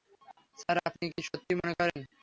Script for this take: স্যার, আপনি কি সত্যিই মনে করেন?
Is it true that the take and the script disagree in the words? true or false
false